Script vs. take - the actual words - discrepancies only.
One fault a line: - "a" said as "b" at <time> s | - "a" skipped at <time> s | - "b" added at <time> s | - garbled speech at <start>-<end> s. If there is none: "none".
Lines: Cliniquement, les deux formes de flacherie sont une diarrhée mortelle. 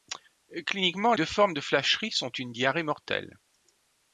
- "les" skipped at 1.1 s